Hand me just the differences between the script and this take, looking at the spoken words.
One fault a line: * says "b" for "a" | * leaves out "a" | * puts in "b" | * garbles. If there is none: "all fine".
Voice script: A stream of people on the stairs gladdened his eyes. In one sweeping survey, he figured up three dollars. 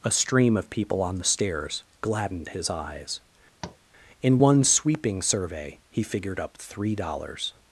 all fine